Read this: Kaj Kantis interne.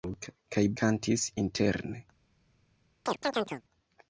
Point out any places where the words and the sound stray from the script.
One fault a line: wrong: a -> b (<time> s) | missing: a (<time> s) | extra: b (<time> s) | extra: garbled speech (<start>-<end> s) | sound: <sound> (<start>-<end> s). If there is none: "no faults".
sound: chirp (3.1-3.6 s)